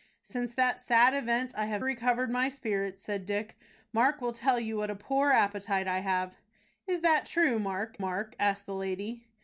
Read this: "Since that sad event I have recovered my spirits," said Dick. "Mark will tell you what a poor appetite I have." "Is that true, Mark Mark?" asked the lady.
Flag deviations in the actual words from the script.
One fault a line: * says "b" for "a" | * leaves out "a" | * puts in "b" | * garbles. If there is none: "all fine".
all fine